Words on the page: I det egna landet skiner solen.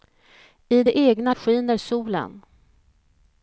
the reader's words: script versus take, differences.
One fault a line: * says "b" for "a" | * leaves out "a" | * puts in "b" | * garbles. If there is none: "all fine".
* leaves out "landet"